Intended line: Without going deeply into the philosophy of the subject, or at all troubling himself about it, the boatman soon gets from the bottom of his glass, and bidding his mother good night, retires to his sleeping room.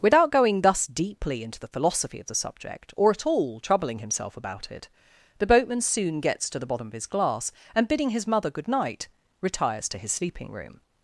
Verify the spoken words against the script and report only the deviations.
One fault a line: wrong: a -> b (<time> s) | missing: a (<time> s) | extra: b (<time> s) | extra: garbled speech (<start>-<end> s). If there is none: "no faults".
extra: thus (0.6 s)
wrong: from -> to (6.5 s)